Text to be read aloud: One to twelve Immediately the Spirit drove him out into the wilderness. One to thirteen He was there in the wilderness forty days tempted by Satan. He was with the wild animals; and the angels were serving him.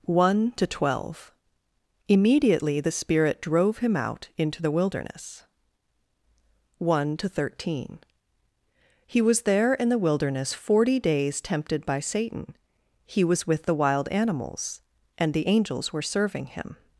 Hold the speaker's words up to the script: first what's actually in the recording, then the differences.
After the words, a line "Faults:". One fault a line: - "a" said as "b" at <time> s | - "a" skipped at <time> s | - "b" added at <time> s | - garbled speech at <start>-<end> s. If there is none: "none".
One to twelve Immediately the Spirit drove him out into the wilderness. One to thirteen He was there in the wilderness forty days tempted by Satan. He was with the wild animals; and the angels were serving him.
Faults:
none